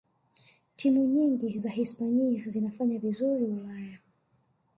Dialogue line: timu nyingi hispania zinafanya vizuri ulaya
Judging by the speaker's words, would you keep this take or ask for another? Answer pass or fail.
fail